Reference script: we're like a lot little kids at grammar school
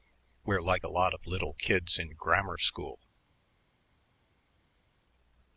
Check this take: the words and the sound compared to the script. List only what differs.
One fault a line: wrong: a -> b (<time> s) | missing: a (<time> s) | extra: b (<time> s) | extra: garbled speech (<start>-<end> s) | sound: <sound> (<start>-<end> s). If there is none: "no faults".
extra: of (1.1 s)
wrong: at -> in (2.0 s)